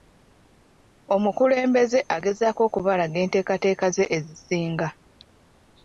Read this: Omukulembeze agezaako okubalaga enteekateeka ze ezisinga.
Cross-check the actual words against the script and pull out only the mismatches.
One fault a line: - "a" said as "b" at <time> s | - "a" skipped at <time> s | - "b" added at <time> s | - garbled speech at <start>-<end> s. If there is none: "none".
none